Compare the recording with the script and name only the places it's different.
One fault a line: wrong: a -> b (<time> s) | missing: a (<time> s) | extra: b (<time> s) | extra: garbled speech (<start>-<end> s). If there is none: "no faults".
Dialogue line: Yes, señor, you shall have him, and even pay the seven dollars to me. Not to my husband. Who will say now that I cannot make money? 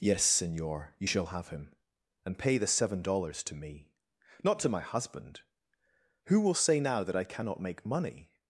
missing: even (2.4 s)